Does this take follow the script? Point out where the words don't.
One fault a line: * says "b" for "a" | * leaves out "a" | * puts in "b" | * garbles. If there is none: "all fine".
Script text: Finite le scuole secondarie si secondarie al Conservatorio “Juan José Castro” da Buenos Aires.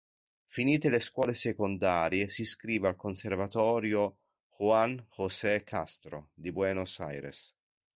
* says "iscrive" for "secondarie"
* says "di" for "da"